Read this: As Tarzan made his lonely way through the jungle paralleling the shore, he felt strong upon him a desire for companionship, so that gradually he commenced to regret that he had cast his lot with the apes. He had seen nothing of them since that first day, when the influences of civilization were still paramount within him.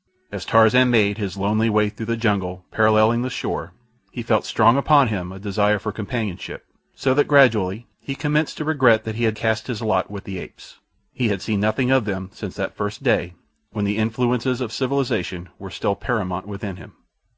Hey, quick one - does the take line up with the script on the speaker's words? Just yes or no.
yes